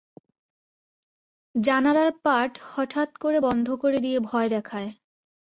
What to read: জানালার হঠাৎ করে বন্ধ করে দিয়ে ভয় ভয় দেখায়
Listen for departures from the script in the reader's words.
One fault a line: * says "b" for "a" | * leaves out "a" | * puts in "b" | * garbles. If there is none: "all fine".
* puts in "পাট"
* leaves out "ভয়"